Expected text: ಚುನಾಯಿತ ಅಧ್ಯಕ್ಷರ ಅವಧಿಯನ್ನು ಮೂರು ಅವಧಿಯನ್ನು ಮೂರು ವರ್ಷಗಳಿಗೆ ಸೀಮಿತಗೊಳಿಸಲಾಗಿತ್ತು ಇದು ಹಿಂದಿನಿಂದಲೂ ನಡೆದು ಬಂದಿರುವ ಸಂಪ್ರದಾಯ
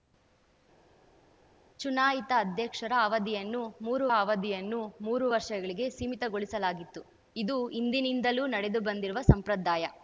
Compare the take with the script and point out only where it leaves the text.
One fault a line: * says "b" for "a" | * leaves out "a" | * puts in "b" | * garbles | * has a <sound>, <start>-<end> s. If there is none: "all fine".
all fine